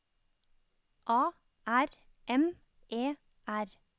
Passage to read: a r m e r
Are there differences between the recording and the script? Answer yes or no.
no